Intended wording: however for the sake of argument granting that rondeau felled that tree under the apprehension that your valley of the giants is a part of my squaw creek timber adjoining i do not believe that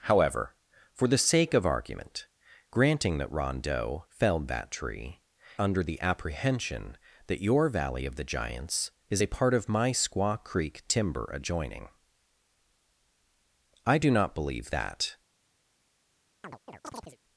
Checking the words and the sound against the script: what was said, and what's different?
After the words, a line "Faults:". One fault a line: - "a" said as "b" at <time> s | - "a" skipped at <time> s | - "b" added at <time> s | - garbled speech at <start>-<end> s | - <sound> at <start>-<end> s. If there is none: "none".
however for the sake of argument granting that rondeau felled that tree under the apprehension that your valley of the giants is a part of my squaw creek timber adjoining i do not believe that
Faults:
- chirp at 16.4-17.2 s